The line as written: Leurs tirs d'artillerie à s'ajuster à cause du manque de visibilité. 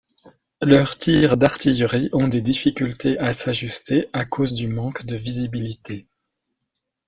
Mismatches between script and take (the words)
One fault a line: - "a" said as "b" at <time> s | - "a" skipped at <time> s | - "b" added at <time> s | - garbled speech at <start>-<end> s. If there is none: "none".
- "ont des difficultés" added at 2.1 s